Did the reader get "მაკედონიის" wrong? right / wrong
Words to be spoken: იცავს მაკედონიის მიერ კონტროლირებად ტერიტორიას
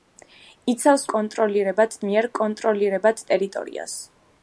wrong